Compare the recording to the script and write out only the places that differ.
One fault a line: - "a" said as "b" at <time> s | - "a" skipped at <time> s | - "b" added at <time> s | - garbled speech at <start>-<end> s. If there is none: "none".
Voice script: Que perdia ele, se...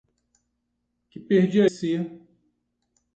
- "ele" skipped at 1.6 s